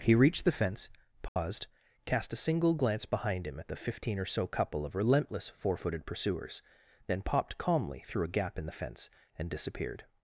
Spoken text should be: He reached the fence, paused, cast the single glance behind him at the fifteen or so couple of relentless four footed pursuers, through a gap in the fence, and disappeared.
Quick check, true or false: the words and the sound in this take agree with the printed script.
false